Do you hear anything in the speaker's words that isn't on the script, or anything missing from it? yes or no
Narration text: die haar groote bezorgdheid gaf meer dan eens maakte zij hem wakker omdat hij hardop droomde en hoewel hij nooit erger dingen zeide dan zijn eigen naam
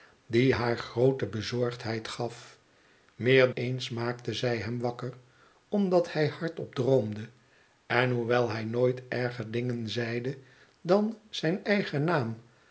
yes